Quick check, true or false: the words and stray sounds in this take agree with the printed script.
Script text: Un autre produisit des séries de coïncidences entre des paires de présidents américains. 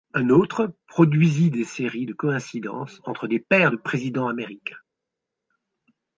true